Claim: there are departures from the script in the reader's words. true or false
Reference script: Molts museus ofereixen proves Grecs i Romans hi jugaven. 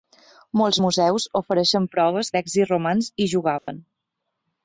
false